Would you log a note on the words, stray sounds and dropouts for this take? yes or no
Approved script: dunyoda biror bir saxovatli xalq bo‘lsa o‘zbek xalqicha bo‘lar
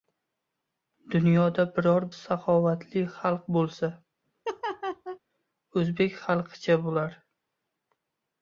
yes